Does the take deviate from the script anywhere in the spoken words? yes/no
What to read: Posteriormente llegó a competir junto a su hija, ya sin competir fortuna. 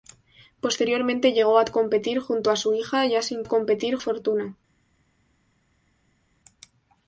no